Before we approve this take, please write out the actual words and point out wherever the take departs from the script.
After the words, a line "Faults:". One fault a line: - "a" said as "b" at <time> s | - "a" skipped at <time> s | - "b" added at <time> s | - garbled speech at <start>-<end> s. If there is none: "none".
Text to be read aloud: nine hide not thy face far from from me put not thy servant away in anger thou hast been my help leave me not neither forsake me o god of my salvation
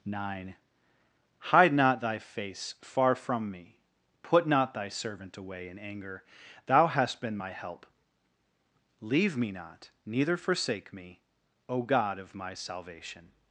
nine hide not thy face far from me put not thy servant away in anger thou hast been my help leave me not neither forsake me o god of my salvation
Faults:
- "from" skipped at 3.5 s